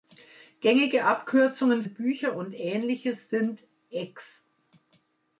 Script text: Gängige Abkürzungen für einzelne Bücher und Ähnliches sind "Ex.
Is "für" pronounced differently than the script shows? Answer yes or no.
yes